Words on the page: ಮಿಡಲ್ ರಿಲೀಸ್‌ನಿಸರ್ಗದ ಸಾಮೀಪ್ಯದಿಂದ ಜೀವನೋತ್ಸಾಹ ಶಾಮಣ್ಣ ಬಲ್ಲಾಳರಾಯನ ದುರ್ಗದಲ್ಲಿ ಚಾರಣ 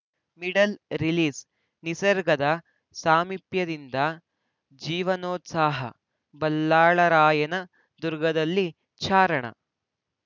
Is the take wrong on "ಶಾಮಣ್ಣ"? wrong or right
wrong